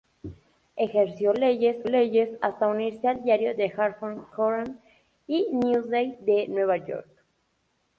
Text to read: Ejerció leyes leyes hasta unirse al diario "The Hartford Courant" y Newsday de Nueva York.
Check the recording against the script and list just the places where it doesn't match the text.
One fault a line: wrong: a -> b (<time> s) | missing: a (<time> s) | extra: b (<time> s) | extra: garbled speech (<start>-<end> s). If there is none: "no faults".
no faults